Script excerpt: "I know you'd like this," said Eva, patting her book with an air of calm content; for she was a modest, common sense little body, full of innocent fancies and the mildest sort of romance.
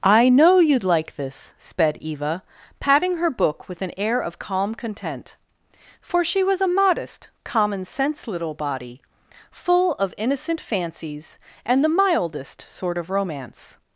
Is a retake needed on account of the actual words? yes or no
yes